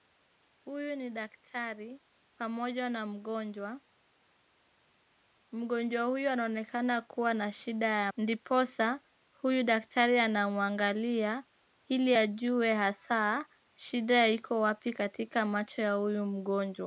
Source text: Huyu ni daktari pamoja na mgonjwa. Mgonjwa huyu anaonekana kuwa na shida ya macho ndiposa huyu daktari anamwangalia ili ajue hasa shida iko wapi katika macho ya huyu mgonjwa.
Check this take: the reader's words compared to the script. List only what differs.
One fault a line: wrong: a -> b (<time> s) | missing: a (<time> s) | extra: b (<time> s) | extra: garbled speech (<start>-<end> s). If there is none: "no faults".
missing: macho (8.1 s)